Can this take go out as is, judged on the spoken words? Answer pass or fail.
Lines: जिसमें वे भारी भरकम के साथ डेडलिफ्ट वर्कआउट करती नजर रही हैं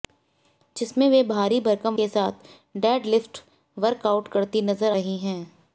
pass